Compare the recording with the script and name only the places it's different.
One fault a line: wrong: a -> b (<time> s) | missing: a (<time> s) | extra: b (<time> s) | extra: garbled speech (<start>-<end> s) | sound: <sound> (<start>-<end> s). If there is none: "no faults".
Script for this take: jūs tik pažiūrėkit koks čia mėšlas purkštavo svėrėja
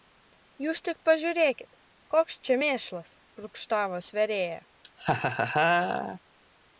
sound: laugh (4.8-6.2 s)